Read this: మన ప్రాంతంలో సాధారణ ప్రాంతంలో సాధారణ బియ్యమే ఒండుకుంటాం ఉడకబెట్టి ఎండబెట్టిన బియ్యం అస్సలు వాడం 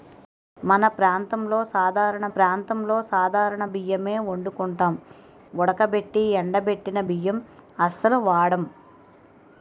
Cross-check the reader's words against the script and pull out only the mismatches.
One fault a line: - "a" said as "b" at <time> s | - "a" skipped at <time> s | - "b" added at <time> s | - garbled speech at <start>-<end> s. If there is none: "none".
none